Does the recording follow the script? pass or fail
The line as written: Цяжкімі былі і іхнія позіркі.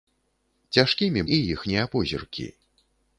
fail